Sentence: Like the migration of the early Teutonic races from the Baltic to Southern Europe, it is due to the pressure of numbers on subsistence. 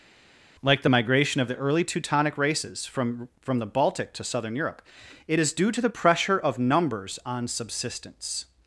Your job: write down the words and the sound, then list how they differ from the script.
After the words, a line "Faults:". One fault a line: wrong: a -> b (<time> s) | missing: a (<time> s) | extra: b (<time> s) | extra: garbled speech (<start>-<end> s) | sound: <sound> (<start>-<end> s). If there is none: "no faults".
Like the migration of the early Teutonic races from from the Baltic to Southern Europe, it is due to the pressure of numbers on subsistence.
Faults:
extra: from (3.4 s)